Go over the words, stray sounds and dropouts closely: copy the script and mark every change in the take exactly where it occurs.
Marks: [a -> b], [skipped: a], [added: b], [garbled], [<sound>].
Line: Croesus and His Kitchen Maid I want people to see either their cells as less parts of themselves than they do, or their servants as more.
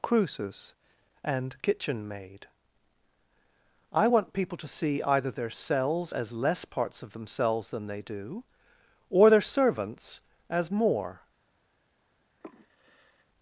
Croesus and [skipped: His] Kitchen Maid I want people to see either their cells as less parts of themselves than they do, or their servants as more. [sigh]